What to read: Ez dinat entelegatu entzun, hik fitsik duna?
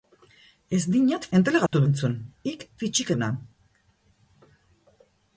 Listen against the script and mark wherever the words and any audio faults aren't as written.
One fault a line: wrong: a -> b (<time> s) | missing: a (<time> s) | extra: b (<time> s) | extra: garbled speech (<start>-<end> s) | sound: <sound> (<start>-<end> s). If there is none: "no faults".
sound: dropout (1.7-1.7 s)